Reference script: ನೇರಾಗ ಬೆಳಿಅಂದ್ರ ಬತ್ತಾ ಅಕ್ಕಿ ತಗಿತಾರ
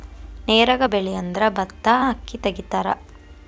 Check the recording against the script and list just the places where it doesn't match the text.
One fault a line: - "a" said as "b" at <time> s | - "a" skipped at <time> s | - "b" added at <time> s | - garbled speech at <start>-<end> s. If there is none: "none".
none